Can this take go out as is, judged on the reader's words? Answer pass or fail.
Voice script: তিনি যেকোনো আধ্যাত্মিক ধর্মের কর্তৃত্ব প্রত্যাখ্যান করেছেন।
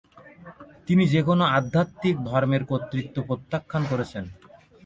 pass